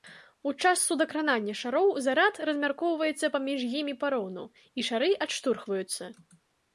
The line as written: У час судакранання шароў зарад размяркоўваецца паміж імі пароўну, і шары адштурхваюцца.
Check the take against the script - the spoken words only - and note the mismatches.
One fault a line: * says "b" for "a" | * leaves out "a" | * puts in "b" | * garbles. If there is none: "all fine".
all fine